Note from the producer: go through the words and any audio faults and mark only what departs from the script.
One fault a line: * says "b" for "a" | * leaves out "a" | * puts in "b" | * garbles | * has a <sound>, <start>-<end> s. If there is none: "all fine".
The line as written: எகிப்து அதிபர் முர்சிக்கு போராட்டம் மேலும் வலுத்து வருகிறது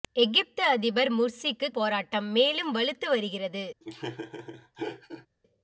* has a laugh, 3.8-5.3 s